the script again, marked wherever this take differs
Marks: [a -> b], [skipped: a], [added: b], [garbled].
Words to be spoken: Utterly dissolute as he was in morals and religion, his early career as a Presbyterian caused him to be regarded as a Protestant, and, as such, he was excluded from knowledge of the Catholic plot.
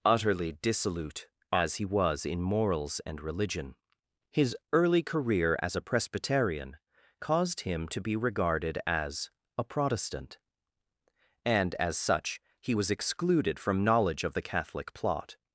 Utterly dissolute as he was in morals and religion, his early career as a Presbyterian caused him to be regarded as a Protestant, and, as such, he was excluded from knowledge of the Catholic plot.